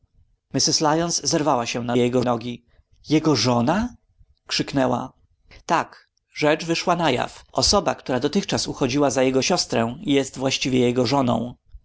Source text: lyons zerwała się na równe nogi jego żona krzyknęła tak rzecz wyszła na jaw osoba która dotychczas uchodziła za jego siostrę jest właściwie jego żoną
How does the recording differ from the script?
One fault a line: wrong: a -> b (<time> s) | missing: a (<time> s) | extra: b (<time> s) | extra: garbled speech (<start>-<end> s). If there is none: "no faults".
wrong: równe -> jego (2.0 s)